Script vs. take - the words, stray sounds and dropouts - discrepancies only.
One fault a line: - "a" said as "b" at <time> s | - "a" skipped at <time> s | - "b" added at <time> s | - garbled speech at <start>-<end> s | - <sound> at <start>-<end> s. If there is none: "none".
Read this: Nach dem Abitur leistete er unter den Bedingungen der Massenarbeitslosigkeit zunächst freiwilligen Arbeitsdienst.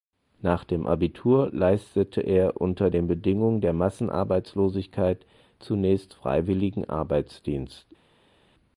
none